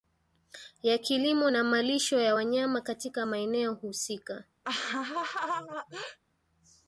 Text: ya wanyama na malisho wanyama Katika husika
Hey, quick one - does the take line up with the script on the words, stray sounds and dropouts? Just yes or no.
no